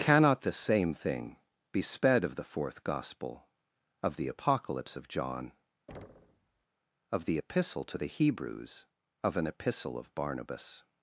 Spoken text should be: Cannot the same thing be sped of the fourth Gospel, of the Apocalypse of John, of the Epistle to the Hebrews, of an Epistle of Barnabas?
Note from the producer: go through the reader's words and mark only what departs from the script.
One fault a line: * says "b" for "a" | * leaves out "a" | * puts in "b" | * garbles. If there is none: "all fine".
all fine